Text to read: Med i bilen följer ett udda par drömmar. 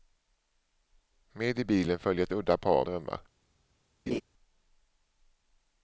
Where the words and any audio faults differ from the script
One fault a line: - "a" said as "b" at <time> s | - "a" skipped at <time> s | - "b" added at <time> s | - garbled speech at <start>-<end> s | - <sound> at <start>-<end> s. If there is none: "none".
- laugh at 4.1-4.2 s